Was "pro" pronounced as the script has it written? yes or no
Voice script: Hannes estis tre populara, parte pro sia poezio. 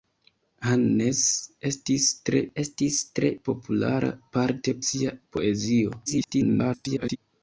no